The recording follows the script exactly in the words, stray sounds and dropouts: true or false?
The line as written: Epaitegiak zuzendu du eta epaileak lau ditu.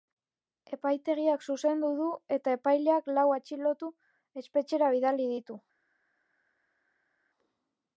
false